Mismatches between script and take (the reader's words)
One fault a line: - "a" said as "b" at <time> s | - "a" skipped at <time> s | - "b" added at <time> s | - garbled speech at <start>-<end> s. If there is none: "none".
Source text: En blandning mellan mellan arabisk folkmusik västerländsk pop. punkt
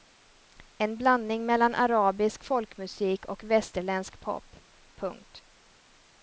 - "mellan" skipped at 1.8 s
- "och" added at 3.3 s